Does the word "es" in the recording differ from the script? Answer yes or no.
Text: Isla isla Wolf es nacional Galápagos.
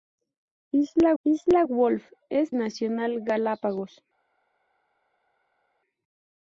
no